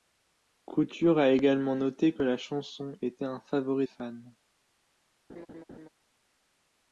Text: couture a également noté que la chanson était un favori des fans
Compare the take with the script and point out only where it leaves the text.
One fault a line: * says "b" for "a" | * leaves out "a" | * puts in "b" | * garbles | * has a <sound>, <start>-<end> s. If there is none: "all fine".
* leaves out "des"
* has a laugh, 5.3-5.9 s